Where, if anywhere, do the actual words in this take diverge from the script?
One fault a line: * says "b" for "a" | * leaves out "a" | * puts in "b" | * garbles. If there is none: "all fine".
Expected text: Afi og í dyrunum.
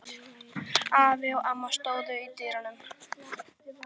* puts in "amma stóðu"